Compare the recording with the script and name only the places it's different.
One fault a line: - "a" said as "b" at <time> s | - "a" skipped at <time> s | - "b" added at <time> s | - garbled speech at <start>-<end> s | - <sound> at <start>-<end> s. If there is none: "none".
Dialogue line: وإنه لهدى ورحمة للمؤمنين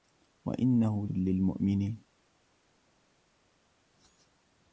- "لهدى ورحمة" skipped at 1.1 s